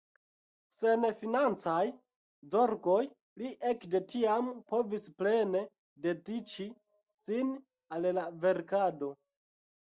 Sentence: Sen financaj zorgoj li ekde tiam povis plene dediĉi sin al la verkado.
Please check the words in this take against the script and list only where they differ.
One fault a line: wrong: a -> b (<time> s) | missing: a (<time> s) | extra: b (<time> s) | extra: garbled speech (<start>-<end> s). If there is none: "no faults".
no faults